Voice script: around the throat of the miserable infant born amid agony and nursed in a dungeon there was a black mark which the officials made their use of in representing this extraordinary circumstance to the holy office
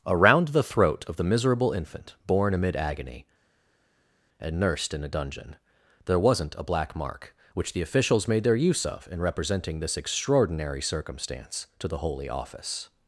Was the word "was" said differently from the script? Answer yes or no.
yes